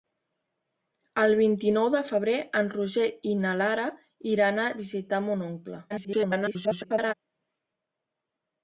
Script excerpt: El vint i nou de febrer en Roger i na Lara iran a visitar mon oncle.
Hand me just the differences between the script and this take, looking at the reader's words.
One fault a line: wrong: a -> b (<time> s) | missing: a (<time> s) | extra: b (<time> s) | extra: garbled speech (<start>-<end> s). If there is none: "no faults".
extra: garbled speech (5.9-7.1 s)